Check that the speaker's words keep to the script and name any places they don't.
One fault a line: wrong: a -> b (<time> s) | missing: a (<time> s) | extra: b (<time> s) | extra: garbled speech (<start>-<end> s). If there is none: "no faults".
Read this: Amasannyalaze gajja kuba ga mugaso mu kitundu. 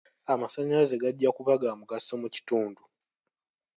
no faults